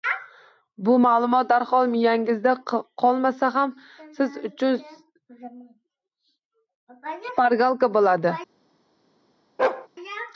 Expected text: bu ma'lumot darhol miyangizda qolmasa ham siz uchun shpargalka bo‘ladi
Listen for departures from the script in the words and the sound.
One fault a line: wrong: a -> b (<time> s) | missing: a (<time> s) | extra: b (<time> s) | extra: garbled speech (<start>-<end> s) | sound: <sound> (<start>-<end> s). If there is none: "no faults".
sound: bark (9.6-9.9 s)